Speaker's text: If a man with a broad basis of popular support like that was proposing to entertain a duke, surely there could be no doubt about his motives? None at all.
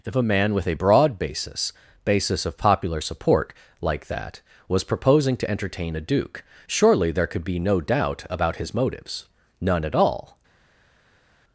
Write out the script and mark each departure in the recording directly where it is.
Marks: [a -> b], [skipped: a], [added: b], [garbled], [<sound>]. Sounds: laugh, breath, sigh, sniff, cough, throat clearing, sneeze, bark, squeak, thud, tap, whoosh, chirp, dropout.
If a man with a broad basis [added: basis] of popular support like that was proposing to entertain a duke, surely there could be no doubt about his motives? None at all.